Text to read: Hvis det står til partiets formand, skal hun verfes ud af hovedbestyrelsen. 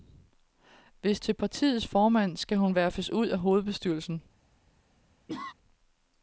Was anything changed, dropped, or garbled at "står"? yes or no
yes